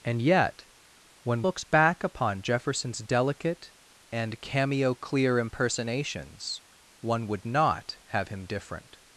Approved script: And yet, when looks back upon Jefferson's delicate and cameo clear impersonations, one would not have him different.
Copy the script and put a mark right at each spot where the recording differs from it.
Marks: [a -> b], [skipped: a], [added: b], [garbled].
And yet, when looks back upon Jefferson's delicate and cameo clear impersonations, one would not have him different.